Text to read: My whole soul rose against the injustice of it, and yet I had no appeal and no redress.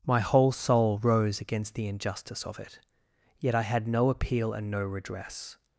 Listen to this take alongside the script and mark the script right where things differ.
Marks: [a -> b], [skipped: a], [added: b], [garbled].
My whole soul rose against the injustice of it, [skipped: and] yet I had no appeal and no redress.